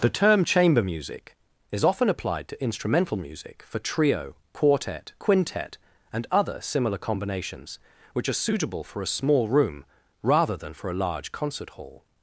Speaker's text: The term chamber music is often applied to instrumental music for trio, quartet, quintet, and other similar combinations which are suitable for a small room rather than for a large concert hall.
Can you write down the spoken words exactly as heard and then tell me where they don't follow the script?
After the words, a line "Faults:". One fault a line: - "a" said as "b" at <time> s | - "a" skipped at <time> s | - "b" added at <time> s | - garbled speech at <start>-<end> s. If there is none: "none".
The term chamber music is often applied to instrumental music for trio, quartet, quintet, and other similar combinations which are suitable for a small room rather than for a large concert hall.
Faults:
none